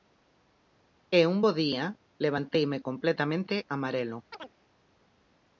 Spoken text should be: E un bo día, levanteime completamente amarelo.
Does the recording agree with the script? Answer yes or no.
yes